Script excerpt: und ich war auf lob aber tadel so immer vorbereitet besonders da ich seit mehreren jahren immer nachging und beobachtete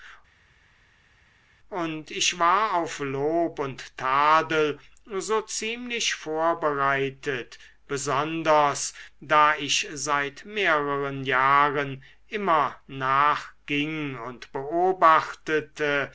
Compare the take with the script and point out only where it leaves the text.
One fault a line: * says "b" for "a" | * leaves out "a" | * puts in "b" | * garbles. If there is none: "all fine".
* says "und" for "aber"
* says "ziemlich" for "immer"